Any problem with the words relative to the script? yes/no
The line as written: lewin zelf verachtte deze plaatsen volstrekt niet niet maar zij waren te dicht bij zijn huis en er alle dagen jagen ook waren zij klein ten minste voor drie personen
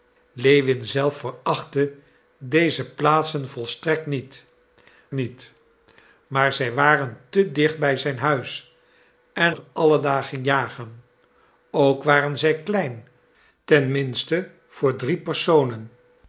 no